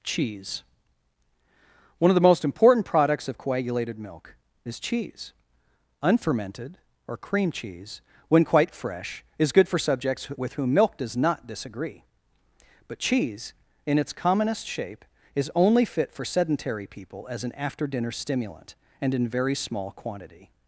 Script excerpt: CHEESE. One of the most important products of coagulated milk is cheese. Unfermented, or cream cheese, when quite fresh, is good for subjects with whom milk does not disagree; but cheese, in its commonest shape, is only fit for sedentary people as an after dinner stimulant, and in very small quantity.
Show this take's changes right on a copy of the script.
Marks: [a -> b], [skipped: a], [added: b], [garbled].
CHEESE. One of the most important products of coagulated milk is cheese. Unfermented, or cream cheese, when quite fresh, is good for subjects with whom milk does not disagree; but cheese, in its commonest shape, is only fit for sedentary people as an after dinner stimulant, and in very small quantity.